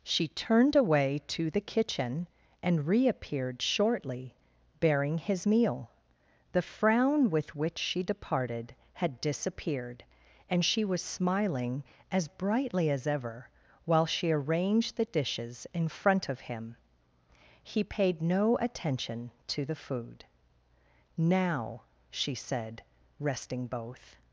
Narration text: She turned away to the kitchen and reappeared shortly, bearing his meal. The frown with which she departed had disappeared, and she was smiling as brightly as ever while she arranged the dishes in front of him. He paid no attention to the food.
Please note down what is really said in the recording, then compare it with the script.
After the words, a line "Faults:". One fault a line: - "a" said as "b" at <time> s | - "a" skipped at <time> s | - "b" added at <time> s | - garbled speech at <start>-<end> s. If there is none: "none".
She turned away to the kitchen and reappeared shortly, bearing his meal. The frown with which she departed had disappeared, and she was smiling as brightly as ever while she arranged the dishes in front of him. He paid no attention to the food. "Now," she said, resting both
Faults:
- "Now she said resting both" added at 21.2 s